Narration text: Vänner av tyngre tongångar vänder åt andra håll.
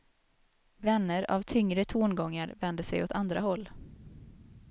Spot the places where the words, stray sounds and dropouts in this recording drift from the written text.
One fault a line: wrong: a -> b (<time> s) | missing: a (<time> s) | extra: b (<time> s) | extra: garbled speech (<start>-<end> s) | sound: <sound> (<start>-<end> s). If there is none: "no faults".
extra: sig (2.8 s)